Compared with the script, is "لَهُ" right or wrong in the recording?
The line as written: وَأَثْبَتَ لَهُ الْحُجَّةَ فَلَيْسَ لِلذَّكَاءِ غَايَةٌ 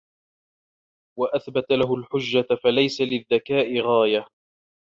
right